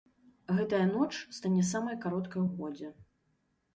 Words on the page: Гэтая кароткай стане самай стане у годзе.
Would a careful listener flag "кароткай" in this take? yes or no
yes